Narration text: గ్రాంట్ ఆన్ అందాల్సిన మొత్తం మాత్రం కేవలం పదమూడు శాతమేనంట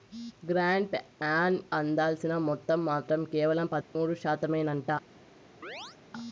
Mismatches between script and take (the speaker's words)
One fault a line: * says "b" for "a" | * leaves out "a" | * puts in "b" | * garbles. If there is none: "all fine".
all fine